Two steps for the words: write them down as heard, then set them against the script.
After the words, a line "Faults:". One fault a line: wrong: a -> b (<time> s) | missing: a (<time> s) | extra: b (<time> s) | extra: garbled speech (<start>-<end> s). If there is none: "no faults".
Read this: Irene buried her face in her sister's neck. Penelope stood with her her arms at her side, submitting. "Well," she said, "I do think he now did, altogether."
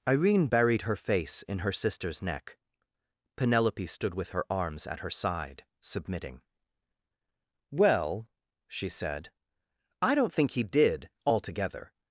Irene buried her face in her sister's neck. Penelope stood with her arms at her side, submitting. "Well," she said, "I don't think he did, altogether."
Faults:
missing: her (4.5 s)
wrong: do -> don't (10.2 s)
missing: now (10.6 s)